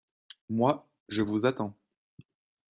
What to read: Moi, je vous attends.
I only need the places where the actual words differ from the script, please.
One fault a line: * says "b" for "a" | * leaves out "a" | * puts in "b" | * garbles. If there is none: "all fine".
all fine